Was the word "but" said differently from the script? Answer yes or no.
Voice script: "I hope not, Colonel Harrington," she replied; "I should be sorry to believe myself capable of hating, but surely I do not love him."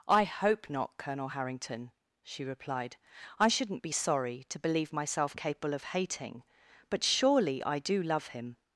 no